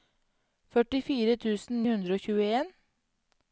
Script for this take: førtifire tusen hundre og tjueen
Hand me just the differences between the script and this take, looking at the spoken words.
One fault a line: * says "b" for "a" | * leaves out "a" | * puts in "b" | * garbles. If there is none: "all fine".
all fine